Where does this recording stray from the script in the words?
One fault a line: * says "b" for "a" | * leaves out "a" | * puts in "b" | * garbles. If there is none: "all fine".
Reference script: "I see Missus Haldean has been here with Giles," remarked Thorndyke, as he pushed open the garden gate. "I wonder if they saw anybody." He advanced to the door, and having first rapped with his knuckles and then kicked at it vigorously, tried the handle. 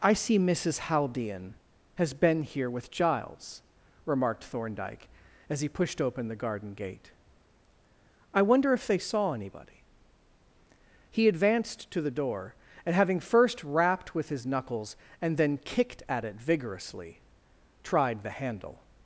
all fine